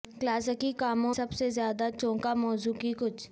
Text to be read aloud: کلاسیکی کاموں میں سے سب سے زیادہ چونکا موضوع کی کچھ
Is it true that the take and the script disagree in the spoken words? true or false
true